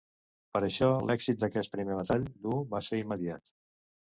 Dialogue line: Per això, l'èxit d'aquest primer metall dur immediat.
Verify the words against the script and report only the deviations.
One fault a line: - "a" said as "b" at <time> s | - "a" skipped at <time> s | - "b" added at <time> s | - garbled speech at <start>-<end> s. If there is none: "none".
- "va ser" added at 2.7 s